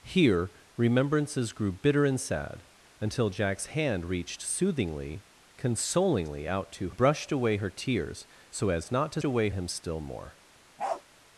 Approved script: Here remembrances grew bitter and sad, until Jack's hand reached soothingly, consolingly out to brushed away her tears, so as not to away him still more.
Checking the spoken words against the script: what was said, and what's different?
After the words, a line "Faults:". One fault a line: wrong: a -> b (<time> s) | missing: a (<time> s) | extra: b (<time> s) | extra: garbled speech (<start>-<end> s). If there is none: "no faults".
Here remembrances grew bitter and sad, until Jack's hand reached soothingly, consolingly out to brushed away her tears, so as not to away him still more.
Faults:
no faults